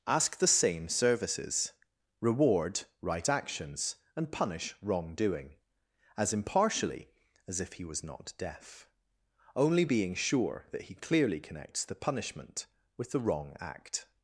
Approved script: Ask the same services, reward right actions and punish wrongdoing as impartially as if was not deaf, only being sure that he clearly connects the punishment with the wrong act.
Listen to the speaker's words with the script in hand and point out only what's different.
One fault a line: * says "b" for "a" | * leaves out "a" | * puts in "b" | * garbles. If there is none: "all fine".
* puts in "he"